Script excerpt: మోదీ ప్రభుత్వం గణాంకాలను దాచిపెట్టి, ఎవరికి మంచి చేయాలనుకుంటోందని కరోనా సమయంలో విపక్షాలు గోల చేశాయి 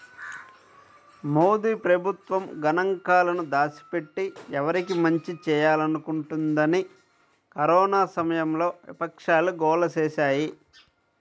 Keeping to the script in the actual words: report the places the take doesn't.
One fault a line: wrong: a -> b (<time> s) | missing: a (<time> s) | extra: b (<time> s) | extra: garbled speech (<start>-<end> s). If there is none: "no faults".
no faults